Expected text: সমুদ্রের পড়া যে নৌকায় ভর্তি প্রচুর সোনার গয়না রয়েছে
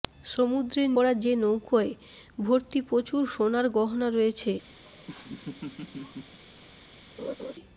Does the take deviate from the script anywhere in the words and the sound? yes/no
yes